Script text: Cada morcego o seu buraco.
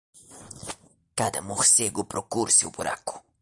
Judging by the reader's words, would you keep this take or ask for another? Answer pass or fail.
fail